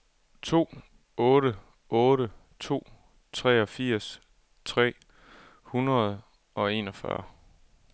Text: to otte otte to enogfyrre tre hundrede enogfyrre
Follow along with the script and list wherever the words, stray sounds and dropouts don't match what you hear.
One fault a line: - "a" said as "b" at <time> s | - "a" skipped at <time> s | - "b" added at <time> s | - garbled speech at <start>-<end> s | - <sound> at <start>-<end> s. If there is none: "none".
- "enogfyrre" said as "treogfirs" at 3.3 s
- "og" added at 6.5 s